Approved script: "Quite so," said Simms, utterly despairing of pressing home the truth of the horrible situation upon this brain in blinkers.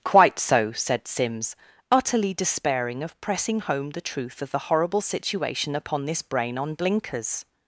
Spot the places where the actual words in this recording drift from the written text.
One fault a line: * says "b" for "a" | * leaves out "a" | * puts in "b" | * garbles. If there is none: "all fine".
* says "on" for "in"